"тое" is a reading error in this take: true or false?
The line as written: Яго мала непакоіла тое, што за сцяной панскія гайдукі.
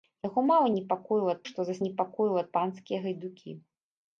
true